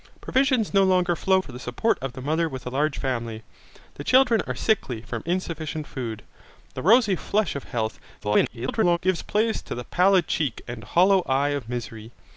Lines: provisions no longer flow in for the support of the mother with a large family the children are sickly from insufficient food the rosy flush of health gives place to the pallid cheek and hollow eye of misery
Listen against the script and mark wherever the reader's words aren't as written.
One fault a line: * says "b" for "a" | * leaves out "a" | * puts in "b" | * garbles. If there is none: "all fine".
* leaves out "in"
* garbles